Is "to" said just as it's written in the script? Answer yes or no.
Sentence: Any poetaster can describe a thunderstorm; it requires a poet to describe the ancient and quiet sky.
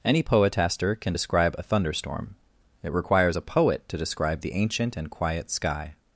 yes